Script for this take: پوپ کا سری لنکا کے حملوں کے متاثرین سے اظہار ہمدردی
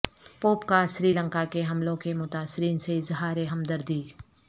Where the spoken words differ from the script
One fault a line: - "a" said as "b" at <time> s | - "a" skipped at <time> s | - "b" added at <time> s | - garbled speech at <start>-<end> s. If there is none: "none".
none